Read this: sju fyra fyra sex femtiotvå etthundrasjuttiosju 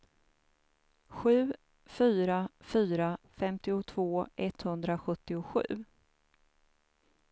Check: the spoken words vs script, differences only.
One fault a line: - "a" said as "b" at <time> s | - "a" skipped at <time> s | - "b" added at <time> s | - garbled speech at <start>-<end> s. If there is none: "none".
- "sex" skipped at 3.2 s